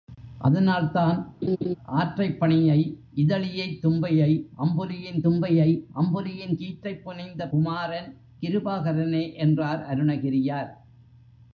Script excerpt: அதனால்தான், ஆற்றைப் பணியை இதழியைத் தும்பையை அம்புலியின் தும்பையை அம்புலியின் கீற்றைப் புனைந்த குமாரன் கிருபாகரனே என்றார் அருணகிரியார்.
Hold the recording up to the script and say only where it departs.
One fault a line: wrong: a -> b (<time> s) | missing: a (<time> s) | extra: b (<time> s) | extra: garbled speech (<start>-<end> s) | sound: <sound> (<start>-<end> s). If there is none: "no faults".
sound: laugh (1.4-1.7 s)